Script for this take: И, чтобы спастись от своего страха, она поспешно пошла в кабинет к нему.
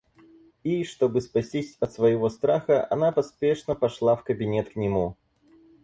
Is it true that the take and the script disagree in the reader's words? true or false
false